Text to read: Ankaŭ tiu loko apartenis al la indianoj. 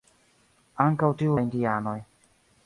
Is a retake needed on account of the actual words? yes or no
yes